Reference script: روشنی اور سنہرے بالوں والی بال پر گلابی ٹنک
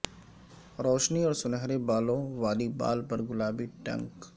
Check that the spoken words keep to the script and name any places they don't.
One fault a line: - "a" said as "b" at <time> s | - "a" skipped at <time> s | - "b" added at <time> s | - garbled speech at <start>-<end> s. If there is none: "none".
none